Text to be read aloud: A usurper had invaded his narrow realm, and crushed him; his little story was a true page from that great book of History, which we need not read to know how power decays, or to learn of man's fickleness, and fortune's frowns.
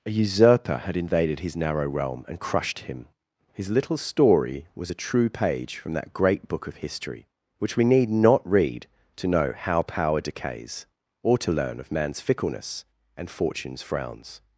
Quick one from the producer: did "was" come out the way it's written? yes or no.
yes